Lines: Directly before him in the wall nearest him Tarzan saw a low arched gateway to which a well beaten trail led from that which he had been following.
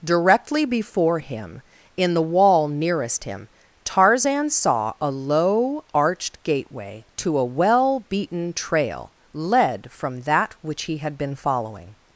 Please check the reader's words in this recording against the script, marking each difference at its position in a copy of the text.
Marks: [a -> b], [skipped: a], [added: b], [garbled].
Directly before him in the wall nearest him Tarzan saw a low arched gateway to [skipped: which] a well beaten trail led from that which he had been following.